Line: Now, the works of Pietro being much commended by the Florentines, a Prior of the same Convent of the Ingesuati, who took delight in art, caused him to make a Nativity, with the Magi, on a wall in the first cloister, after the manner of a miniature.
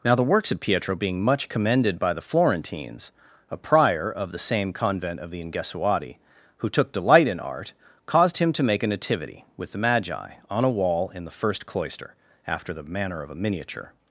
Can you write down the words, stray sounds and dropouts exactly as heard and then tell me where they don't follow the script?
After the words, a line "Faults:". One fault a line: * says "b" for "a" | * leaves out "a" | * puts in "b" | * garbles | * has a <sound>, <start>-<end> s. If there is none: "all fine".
Now, the works of Pietro being much commended by the Florentines, a Prior of the same Convent of the Ingesuati, who took delight in art, caused him to make a Nativity, with the Magi, on a wall in the first cloister, after the manner of a miniature.
Faults:
all fine